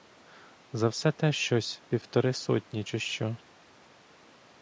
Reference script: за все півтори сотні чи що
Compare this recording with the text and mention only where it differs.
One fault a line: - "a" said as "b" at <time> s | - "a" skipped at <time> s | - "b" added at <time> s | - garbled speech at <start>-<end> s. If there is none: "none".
- "те щось" added at 1.1 s